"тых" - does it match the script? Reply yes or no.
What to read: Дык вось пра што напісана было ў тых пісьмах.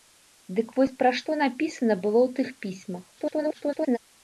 yes